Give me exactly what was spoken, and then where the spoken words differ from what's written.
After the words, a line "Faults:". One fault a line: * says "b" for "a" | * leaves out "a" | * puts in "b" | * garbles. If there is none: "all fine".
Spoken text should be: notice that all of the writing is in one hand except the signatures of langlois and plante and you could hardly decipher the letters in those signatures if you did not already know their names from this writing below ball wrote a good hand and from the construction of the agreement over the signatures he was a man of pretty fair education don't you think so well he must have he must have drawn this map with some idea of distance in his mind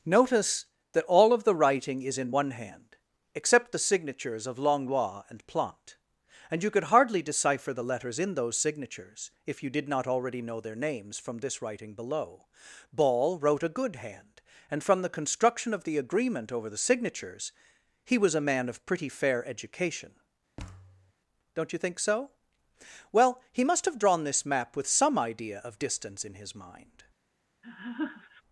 notice that all of the writing is in one hand except the signatures of langlois and plante and you could hardly decipher the letters in those signatures if you did not already know their names from this writing below ball wrote a good hand and from the construction of the agreement over the signatures he was a man of pretty fair education don't you think so well he must have drawn this map with some idea of distance in his mind
Faults:
* leaves out "he must have"